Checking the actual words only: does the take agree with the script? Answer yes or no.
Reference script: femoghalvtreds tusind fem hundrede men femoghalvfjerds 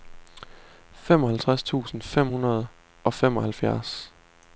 no